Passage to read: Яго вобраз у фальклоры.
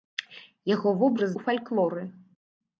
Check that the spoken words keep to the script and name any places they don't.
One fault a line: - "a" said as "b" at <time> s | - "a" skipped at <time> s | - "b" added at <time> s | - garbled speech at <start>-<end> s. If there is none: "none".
none